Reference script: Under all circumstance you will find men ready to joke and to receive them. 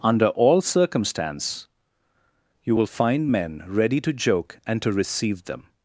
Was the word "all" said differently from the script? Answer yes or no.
no